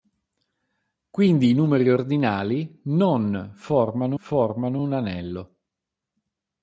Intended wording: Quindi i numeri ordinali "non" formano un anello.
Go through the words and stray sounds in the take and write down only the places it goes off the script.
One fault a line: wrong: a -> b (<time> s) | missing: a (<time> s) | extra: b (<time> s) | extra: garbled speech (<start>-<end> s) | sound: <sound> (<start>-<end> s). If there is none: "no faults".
extra: formano (4.1 s)